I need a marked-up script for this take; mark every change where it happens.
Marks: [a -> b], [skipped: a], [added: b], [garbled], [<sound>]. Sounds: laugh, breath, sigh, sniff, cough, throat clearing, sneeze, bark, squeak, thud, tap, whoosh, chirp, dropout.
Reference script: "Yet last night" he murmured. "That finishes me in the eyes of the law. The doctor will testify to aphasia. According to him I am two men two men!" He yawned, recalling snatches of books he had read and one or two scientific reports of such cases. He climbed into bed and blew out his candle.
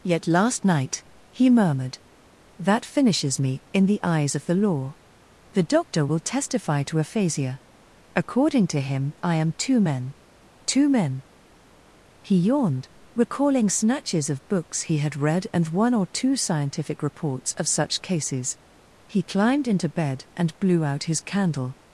"Yet last night" he murmured. "That finishes me in the eyes of the law. The doctor will testify to aphasia. According to him I am two men two men!" He yawned, recalling snatches of books he had read and one or two scientific reports of such cases. He climbed into bed and blew out his candle.